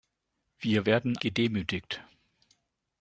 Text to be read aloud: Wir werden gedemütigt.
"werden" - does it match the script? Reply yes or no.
yes